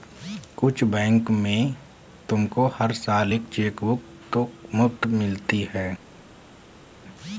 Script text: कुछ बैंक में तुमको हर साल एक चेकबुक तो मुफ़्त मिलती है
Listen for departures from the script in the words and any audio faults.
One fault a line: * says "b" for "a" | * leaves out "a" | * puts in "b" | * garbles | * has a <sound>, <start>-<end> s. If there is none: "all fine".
all fine